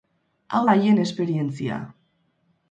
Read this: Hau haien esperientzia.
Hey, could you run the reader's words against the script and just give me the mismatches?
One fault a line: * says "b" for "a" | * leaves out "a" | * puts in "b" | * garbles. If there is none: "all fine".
all fine